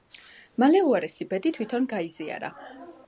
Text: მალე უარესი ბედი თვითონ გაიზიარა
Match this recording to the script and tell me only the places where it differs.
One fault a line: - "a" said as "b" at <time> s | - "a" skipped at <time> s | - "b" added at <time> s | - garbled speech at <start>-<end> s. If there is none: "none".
none